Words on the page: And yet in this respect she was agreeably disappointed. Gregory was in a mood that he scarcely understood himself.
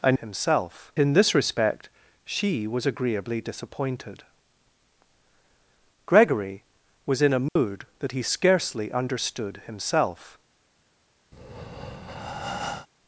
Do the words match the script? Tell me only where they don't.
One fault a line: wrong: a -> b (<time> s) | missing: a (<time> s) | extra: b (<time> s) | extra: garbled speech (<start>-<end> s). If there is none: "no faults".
wrong: yet -> himself (0.2 s)